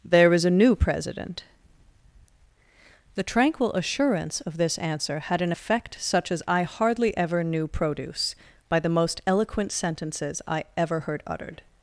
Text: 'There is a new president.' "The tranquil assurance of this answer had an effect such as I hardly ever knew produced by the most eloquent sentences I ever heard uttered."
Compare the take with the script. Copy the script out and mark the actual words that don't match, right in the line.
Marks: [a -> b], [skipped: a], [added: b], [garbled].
'There is a new president.' "The tranquil assurance of this answer had an effect such as I hardly ever knew [produced -> produce] by the most eloquent sentences I ever heard uttered."